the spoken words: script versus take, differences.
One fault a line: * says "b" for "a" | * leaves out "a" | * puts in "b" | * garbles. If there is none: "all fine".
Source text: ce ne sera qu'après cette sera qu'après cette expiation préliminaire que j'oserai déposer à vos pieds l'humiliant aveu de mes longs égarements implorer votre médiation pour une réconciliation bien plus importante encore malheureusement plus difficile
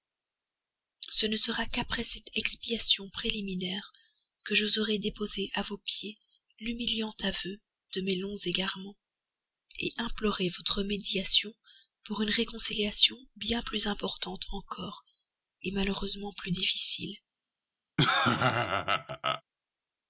* leaves out "sera qu'après cette"